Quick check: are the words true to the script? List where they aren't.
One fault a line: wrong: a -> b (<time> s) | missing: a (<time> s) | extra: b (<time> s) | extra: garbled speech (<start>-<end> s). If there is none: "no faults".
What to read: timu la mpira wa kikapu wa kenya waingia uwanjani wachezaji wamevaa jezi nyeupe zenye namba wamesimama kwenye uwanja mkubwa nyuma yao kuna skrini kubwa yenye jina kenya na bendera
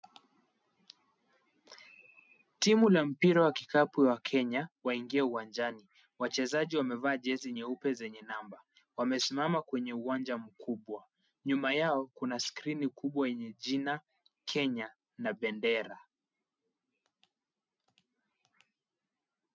no faults